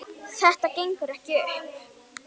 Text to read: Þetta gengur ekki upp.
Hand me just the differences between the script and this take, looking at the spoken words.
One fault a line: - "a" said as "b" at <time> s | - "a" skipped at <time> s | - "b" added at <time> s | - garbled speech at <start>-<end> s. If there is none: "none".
none